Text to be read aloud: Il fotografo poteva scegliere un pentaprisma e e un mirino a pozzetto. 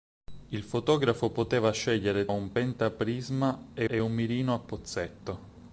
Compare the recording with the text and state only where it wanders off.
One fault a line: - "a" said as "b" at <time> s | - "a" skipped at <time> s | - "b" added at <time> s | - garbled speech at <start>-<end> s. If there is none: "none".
none